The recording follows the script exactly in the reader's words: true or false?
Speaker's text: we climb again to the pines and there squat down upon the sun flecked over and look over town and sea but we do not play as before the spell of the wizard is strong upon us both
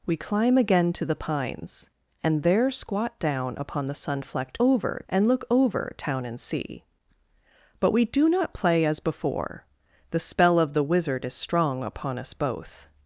true